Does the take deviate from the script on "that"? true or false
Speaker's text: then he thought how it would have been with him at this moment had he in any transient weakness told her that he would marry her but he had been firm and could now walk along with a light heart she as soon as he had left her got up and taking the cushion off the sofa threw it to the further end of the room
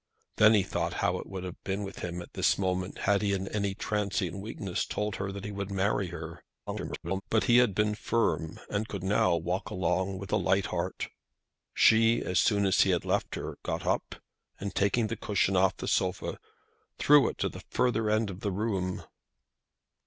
false